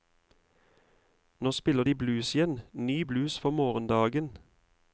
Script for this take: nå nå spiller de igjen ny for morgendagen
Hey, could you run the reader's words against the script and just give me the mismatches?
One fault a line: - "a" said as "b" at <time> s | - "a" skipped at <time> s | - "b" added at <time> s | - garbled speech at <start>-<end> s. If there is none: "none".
- "nå" skipped at 1.5 s
- "blues" added at 1.9 s
- "blues" added at 3.0 s